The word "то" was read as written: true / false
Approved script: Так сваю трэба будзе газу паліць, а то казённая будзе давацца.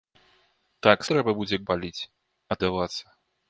false